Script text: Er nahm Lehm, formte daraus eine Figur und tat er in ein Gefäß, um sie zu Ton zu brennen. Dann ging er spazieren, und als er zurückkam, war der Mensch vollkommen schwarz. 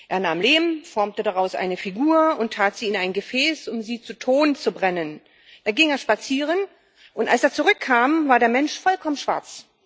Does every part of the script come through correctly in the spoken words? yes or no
no